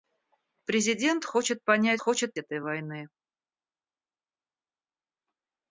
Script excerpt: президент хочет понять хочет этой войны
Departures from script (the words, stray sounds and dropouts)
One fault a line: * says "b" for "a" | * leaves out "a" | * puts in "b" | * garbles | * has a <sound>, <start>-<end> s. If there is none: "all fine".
all fine